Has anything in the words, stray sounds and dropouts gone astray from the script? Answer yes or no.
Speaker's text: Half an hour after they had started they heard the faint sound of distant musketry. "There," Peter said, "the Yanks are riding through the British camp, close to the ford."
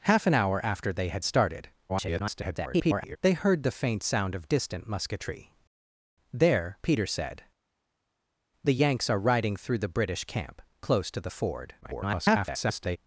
yes